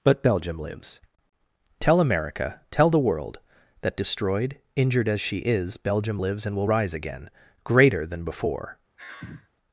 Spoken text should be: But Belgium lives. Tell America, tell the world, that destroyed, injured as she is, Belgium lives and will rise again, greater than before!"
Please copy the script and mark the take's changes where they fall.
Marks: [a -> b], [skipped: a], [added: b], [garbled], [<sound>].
But Belgium lives. Tell America, tell the world, that destroyed, injured as she is, Belgium lives and will rise again, greater than before!" [sigh]